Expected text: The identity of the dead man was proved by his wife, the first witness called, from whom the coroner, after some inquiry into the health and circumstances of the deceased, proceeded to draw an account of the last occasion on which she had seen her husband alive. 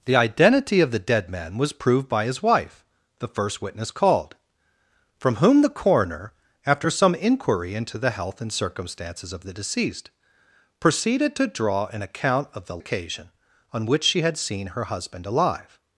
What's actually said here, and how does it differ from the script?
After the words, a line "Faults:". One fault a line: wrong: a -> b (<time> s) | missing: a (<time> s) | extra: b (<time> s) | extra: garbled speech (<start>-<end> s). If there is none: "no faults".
The identity of the dead man was proved by his wife, the first witness called, from whom the coroner, after some inquiry into the health and circumstances of the deceased, proceeded to draw an account of the occasion on which she had seen her husband alive.
Faults:
missing: last (12.8 s)